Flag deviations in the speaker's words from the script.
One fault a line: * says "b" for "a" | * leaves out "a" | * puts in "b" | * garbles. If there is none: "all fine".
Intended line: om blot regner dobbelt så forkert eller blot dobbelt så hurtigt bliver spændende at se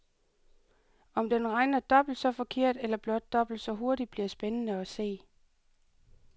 * says "den" for "blot"